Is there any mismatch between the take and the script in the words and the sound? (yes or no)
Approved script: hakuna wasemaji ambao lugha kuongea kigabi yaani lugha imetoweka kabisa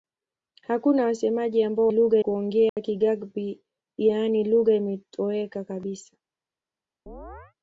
yes